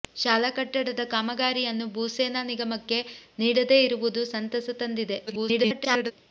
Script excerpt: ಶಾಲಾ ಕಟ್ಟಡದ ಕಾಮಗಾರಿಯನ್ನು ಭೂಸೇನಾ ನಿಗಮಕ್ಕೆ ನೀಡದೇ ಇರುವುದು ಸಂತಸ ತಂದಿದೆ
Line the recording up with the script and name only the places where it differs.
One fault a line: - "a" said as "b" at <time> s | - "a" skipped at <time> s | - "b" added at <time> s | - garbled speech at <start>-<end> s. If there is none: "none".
- garbled speech at 5.3-6.1 s